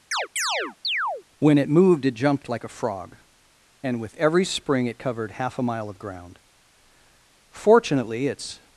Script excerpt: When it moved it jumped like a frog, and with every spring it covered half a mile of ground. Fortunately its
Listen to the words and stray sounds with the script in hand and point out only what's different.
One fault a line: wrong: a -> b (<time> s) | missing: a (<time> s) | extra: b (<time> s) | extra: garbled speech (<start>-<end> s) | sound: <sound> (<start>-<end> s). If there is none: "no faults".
sound: chirp (0.1-1.2 s)